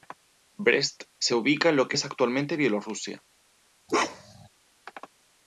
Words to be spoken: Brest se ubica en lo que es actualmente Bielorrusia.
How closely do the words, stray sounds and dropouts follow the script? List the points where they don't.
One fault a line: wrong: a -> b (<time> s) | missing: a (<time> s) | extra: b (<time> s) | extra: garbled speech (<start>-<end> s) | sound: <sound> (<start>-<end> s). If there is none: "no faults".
sound: bark (3.9-4.5 s)